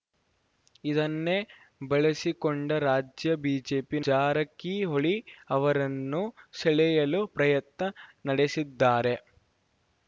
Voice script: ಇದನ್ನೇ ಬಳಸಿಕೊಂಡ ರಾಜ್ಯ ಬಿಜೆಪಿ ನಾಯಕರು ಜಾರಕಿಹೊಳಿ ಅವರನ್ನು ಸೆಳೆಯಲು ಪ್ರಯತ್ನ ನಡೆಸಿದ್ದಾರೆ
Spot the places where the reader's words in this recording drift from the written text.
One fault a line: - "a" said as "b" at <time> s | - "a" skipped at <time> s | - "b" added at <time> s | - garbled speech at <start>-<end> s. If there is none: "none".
- "ನಾಯಕರು" skipped at 4.0 s